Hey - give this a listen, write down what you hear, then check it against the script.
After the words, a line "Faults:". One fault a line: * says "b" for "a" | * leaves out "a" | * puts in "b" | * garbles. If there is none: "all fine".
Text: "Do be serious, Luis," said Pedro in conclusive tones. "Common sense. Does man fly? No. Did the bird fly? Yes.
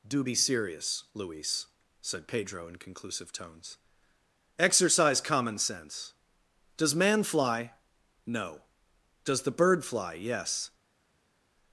"Do be serious, Luis," said Pedro in conclusive tones. "Exercise common sense. Does man fly? No. Does the bird fly? Yes.
Faults:
* puts in "Exercise"
* says "Does" for "Did"